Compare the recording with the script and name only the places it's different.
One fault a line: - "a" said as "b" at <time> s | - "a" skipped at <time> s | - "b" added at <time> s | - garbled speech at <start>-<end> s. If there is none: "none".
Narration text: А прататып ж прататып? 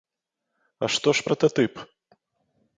- "прататып" said as "што" at 0.9 s